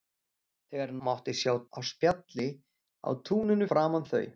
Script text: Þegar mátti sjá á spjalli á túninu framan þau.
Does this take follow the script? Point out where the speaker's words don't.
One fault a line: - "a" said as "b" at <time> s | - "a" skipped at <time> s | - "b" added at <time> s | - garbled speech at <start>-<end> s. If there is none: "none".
none